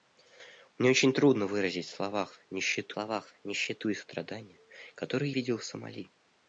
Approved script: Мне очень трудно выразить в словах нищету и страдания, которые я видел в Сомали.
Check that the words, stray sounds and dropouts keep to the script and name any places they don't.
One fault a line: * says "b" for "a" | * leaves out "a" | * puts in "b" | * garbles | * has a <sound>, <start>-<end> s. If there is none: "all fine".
* puts in "словах нищету"
* leaves out "я"